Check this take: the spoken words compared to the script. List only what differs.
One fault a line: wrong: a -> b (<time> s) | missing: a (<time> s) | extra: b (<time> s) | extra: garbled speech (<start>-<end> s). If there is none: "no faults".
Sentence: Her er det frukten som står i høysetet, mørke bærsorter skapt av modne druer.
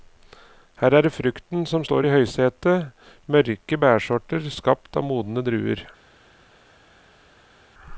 no faults